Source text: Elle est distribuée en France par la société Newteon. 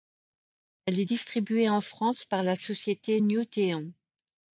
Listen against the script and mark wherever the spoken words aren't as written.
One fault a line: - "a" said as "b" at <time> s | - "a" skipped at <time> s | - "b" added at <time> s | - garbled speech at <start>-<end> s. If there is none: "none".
none